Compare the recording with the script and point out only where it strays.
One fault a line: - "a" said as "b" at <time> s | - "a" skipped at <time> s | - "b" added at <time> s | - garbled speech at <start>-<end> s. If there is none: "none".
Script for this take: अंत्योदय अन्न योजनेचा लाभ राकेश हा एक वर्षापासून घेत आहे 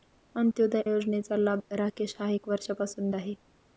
- "अन्न" skipped at 0.8 s
- "घेत" skipped at 3.1 s